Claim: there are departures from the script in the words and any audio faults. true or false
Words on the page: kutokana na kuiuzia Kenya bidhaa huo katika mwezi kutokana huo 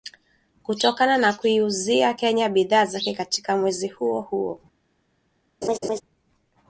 true